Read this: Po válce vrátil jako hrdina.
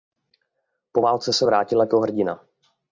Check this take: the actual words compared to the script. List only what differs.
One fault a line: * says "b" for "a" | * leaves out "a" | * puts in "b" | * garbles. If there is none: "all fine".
* puts in "se"